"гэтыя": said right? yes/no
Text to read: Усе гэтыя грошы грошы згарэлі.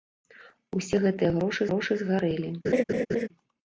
yes